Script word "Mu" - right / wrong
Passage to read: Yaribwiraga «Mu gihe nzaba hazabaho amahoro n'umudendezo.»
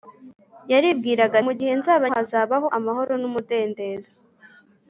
right